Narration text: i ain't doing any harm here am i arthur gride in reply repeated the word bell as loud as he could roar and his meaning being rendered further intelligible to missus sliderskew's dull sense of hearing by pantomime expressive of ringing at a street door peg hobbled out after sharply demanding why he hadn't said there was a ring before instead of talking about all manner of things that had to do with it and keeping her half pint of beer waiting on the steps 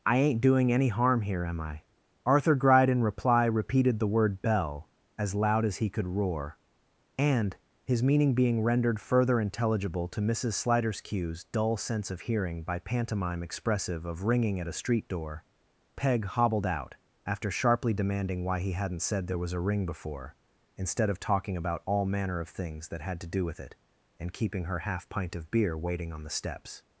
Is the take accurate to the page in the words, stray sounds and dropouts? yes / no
yes